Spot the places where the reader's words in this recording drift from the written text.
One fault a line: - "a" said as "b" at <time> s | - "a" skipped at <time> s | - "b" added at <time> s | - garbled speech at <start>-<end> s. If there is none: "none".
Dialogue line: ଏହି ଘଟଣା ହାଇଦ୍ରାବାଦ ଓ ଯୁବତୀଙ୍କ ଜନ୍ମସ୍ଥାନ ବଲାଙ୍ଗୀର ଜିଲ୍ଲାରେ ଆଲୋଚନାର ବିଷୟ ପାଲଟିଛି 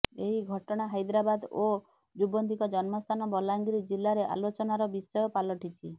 none